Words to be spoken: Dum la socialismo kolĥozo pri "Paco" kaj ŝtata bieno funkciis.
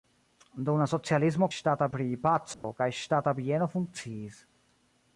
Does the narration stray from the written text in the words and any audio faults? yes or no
yes